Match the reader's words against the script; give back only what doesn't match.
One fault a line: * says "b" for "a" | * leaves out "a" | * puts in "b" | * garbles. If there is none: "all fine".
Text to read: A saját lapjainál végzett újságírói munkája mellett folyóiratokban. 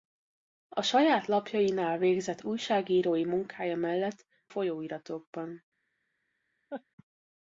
all fine